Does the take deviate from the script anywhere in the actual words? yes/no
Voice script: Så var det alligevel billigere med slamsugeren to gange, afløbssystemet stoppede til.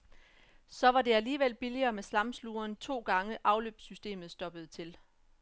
no